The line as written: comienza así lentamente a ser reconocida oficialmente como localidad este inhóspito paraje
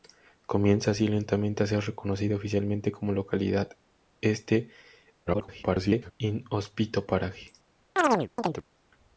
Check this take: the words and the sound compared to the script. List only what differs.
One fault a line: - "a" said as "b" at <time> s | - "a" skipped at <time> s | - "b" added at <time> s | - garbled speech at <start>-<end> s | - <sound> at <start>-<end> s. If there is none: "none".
- garbled speech at 5.3-6.1 s
- chirp at 8.0-8.6 s